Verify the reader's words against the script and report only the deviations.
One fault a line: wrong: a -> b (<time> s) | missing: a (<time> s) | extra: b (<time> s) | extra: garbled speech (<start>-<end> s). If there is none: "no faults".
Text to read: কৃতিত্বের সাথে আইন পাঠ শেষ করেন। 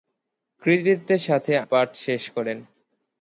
missing: আইন (1.5 s)